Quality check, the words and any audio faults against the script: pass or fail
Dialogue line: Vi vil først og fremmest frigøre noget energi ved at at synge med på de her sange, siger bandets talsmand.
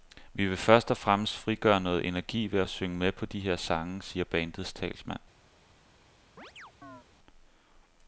fail